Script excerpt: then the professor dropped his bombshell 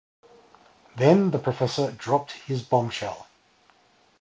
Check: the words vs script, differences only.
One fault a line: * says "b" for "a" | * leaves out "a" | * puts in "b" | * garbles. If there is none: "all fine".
all fine